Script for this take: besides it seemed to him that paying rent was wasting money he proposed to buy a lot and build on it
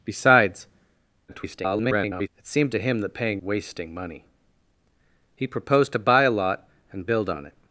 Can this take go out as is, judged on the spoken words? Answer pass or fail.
fail